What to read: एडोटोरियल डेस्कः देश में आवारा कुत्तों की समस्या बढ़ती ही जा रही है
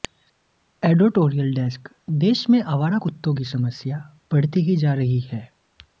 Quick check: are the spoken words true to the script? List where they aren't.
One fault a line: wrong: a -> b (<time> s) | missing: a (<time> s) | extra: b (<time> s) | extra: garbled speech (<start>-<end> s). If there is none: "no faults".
no faults